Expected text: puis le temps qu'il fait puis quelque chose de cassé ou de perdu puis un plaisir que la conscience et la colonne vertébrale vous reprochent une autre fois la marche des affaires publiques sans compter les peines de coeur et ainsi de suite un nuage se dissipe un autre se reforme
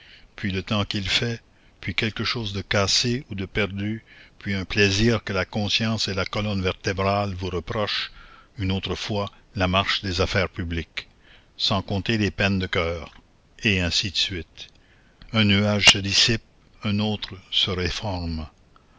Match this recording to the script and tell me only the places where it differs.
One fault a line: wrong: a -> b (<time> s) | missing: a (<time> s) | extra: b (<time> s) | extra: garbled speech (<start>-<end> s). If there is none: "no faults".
no faults